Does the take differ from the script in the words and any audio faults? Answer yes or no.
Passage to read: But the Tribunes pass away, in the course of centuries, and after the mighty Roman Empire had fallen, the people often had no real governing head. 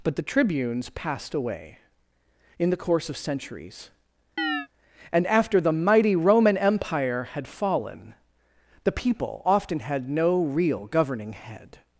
yes